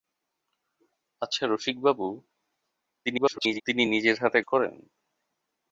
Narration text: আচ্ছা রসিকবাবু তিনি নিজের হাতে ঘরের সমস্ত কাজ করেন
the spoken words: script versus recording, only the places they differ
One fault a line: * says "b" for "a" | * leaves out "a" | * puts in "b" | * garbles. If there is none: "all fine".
* garbles
* leaves out "ঘরের সমস্ত কাজ"